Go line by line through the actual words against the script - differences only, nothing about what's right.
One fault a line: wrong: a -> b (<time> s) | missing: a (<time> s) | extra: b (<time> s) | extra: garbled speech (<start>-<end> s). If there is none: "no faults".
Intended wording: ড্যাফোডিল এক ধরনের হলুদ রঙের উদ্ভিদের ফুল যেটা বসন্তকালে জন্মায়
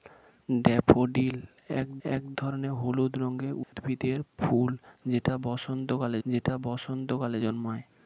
extra: এক (2.1 s)
extra: যেটা বসন্তকালে (6.3 s)